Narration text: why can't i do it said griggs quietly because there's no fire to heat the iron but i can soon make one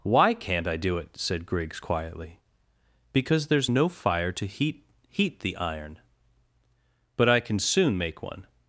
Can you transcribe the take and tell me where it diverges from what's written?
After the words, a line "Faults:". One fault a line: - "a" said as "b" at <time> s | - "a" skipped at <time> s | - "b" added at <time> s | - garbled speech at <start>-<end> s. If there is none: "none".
why can't i do it said griggs quietly because there's no fire to heat heat the iron but i can soon make one
Faults:
- "heat" added at 5.1 s